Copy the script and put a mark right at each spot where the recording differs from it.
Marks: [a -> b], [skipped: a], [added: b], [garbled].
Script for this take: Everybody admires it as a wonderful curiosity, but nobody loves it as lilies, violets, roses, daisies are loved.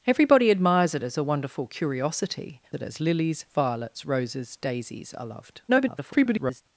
Everybody admires it as a wonderful curiosity, [skipped: but nobody loves] it as lilies, violets, roses, daisies are loved. [garbled]